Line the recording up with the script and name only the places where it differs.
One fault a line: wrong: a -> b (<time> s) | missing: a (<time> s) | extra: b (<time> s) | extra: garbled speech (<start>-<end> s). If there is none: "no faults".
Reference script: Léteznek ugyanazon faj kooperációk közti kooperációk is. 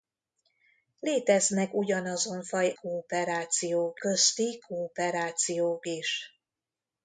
no faults